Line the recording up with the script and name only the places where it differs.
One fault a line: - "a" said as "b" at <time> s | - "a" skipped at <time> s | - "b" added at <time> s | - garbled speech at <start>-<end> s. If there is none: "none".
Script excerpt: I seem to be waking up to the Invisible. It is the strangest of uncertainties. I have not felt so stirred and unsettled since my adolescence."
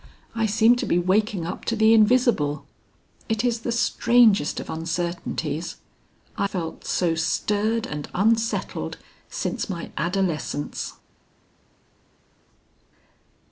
- "have not" skipped at 6.5 s